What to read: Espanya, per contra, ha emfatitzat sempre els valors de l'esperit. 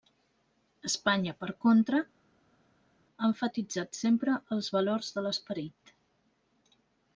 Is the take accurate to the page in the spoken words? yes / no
yes